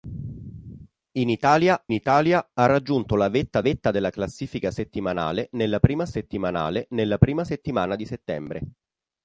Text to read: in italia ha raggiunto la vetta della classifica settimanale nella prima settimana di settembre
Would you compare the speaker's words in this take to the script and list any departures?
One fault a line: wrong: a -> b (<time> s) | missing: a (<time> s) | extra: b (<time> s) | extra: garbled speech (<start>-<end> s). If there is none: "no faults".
extra: italia (1.9 s)
extra: vetta (3.6 s)
extra: settimanale nella prima (6.1 s)